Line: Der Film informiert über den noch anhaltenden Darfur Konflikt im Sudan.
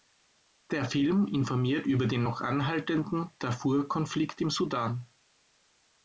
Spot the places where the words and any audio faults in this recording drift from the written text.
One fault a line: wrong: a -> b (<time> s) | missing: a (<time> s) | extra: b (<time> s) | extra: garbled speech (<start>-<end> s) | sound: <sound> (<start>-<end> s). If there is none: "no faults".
no faults